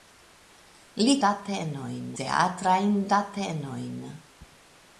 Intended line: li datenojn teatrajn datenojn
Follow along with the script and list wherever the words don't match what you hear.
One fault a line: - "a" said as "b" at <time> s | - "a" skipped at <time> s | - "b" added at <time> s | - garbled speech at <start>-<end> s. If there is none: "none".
none